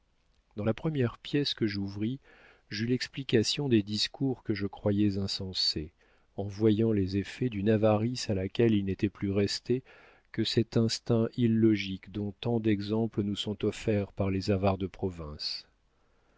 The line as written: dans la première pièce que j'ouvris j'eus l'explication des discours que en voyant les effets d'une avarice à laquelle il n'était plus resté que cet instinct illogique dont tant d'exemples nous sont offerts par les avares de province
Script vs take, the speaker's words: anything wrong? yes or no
yes